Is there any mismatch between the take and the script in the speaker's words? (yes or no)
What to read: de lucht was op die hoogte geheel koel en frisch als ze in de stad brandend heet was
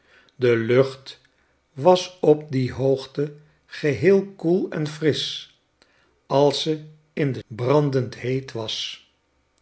yes